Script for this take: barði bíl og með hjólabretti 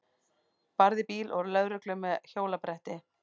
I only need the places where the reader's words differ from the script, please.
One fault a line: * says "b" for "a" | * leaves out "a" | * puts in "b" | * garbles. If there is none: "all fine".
* puts in "lögreglu"